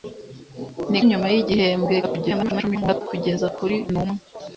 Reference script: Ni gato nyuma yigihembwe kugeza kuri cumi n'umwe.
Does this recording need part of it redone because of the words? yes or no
yes